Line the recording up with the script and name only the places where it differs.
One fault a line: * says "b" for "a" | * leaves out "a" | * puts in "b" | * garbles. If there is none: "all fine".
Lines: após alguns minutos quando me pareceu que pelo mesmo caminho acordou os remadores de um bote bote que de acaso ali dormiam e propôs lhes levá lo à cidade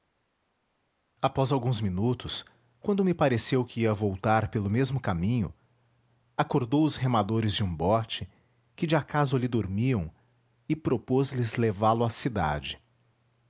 * puts in "ia voltar"
* leaves out "bote"